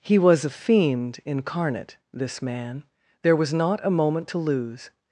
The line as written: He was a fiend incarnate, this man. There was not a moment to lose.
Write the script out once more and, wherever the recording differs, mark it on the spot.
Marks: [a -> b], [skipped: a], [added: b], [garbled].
He was a fiend incarnate, this man. There was not a moment to lose.